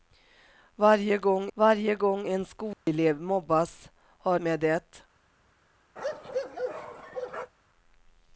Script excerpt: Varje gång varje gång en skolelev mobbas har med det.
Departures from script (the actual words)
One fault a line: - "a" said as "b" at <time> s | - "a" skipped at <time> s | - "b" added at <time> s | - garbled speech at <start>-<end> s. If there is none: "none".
none